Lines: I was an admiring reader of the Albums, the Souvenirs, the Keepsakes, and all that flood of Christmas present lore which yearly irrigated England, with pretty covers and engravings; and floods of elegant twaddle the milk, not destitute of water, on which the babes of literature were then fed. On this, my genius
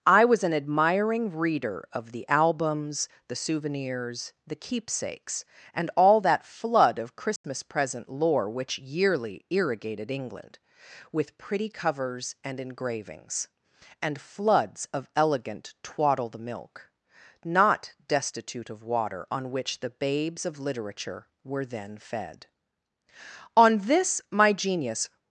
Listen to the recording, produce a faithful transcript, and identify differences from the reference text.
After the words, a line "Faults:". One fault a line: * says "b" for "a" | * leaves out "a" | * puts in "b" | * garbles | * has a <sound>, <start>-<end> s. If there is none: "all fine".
I was an admiring reader of the Albums, the Souvenirs, the Keepsakes, and all that flood of Christmas present lore which yearly irrigated England, with pretty covers and engravings; and floods of elegant twaddle the milk, not destitute of water, on which the babes of literature were then fed. On this, my genius
Faults:
* has a dropout, 7.4-7.4 s